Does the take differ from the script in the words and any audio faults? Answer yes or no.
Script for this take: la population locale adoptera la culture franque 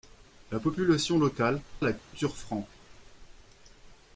yes